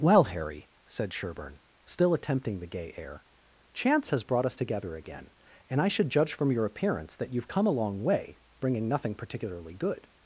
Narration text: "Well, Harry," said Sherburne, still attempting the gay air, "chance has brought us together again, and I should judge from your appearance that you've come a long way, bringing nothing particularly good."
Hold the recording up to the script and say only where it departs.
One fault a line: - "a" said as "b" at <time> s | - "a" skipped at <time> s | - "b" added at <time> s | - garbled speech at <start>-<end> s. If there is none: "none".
none